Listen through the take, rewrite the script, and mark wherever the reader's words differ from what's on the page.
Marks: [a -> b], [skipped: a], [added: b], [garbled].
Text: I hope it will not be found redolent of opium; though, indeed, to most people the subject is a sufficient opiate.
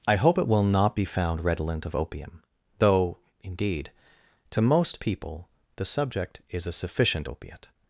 I hope it will not be found redolent of opium; though, indeed, to most people the subject is a sufficient opiate.